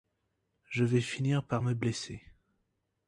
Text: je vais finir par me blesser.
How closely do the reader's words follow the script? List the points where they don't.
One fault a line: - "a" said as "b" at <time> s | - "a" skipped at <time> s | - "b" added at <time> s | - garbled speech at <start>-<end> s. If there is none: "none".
none